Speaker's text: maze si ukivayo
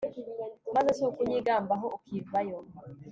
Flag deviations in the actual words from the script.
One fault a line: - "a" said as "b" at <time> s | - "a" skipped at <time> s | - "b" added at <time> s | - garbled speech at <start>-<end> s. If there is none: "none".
- "ukunyigambaho" added at 1.1 s